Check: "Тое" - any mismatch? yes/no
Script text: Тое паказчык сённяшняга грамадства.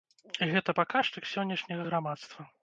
yes